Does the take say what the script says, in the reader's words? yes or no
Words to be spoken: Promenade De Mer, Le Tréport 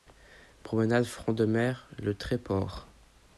no